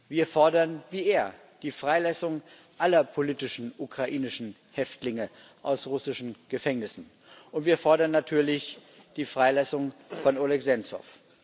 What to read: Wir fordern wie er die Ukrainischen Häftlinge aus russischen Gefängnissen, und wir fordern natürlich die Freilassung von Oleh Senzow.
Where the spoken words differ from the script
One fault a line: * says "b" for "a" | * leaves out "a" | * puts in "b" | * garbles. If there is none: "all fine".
* puts in "Freilassung aller politischen"